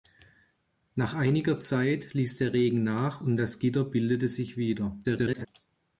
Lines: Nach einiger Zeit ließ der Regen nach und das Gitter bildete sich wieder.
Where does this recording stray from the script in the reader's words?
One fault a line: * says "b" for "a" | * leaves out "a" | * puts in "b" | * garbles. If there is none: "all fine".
* garbles